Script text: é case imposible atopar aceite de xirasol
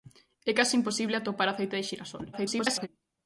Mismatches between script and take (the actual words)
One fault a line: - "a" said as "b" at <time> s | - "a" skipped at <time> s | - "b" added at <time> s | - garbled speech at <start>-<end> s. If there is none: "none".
- garbled speech at 2.3-2.9 s